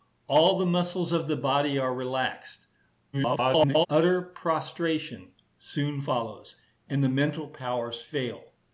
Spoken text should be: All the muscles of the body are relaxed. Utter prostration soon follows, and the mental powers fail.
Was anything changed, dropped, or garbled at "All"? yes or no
no